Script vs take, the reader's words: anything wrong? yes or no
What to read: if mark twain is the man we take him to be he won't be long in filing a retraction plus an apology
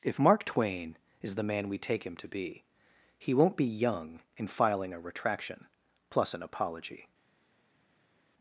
yes